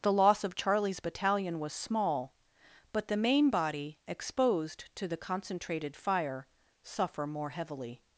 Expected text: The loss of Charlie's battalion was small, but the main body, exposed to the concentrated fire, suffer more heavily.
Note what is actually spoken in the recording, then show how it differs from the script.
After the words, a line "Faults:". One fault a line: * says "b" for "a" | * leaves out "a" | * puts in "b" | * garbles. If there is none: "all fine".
The loss of Charlie's battalion was small, but the main body, exposed to the concentrated fire, suffer more heavily.
Faults:
all fine